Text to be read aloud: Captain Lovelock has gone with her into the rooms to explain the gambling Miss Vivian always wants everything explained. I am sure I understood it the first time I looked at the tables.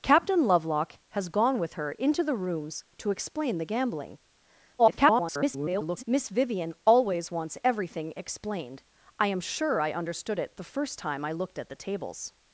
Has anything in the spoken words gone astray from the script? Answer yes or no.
yes